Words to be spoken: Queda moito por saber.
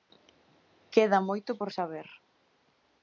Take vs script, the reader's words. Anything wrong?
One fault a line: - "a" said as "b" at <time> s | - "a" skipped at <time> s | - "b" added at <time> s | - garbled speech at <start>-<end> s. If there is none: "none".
none